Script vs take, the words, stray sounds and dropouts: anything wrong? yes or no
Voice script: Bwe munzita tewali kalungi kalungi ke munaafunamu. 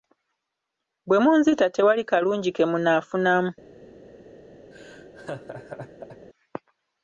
yes